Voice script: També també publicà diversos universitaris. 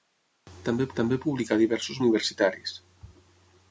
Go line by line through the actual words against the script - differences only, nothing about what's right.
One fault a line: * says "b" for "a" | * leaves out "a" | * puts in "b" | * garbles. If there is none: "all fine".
all fine